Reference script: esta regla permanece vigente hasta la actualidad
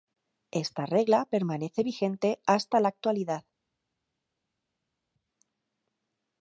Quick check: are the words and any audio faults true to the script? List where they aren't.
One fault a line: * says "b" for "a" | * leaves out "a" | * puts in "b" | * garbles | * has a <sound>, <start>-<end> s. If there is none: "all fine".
all fine